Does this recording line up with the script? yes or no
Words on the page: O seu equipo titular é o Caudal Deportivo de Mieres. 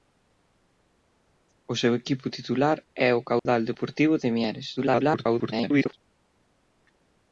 no